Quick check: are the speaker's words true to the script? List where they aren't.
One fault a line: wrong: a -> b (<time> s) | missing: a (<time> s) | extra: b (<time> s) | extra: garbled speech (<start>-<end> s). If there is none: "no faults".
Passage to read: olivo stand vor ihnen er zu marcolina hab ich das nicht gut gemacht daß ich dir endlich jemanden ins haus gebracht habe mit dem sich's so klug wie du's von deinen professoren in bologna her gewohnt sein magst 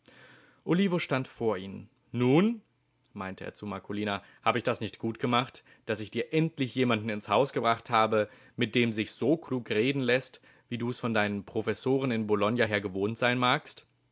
extra: nun meinte (2.1 s)
extra: reden läßt (9.7 s)